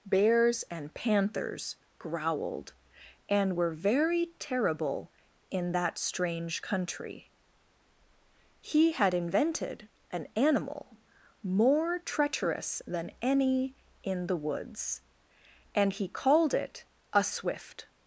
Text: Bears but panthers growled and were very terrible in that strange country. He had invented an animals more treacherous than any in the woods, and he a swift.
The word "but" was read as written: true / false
false